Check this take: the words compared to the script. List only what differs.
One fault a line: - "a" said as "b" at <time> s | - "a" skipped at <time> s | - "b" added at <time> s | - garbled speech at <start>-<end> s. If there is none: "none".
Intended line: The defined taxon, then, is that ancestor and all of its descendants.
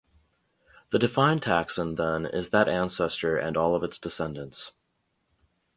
none